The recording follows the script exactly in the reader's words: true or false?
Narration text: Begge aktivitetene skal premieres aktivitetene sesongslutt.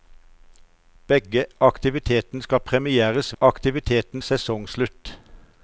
true